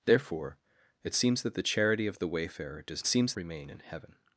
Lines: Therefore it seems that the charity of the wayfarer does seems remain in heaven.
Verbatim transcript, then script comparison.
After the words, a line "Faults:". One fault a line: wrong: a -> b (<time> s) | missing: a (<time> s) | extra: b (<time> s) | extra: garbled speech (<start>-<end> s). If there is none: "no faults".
Therefore it seems that the charity of the wayfarer does seems remain in heaven.
Faults:
no faults